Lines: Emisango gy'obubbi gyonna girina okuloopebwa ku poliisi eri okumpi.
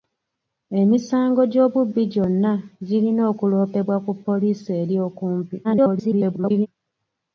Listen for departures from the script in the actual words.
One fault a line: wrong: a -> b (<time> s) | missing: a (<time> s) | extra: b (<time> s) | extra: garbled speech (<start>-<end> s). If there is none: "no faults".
extra: garbled speech (5.6-6.7 s)